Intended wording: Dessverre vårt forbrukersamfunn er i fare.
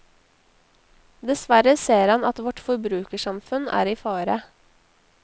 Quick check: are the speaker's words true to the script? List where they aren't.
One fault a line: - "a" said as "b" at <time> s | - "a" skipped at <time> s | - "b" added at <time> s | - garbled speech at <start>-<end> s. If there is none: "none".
- "ser han at" added at 1.8 s